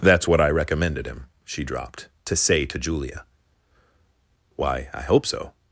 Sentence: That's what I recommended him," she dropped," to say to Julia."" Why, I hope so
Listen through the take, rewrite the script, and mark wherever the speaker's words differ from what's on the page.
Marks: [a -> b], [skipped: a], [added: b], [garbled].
That's what I recommended him," she dropped," to say to Julia."" Why, I hope so